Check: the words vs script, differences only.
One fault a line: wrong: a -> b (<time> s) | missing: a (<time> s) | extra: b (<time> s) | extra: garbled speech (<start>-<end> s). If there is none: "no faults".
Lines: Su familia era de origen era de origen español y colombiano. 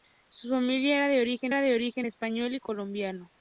no faults